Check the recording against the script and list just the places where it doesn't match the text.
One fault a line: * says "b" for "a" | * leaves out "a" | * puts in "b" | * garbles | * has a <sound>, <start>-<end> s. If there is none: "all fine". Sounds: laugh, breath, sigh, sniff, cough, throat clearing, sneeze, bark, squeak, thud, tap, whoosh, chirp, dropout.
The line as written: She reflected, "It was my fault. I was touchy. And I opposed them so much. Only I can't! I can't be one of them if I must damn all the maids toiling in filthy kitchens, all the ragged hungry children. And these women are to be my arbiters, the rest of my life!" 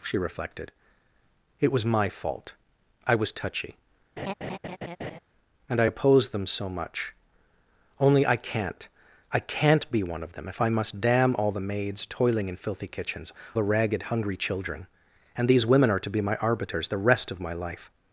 * has a laugh, 4.2-5.2 s
* leaves out "all"